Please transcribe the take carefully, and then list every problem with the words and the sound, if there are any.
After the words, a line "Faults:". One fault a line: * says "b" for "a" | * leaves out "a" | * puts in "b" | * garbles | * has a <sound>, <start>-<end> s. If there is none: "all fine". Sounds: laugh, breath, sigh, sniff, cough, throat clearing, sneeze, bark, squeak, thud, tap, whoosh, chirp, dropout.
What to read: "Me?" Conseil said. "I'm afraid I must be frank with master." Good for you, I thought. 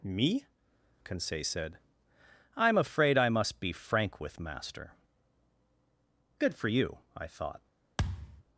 "Me?" Conseil said. "I'm afraid I must be frank with master." Good for you, I thought.
Faults:
* has a thud, 8.0-8.4 s